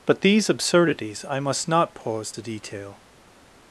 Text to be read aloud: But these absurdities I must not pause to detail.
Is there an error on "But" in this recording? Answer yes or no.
no